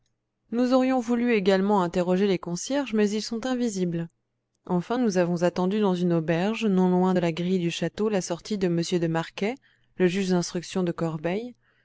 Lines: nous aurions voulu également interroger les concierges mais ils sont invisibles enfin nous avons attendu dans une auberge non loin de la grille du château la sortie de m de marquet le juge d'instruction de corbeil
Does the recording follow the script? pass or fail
pass